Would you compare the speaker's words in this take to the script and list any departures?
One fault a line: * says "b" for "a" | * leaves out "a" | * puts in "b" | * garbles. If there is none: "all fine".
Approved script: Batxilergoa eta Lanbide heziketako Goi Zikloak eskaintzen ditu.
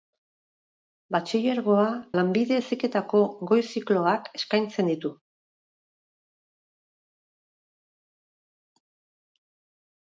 * leaves out "eta"